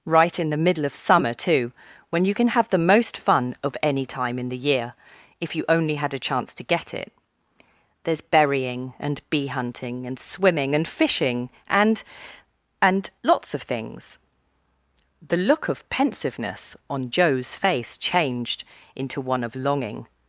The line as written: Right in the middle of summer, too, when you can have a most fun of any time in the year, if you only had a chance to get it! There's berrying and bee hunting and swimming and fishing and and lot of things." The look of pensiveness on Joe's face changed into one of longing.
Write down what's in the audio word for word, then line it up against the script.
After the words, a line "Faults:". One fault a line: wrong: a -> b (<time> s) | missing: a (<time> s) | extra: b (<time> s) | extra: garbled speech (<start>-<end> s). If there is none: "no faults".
Right in the middle of summer, too, when you can have the most fun of any time in the year, if you only had a chance to get it! There's berrying and bee hunting and swimming and fishing and and lots of things." The look of pensiveness on Joe's face changed into one of longing.
Faults:
wrong: a -> the (2.7 s)
wrong: lot -> lots (13.2 s)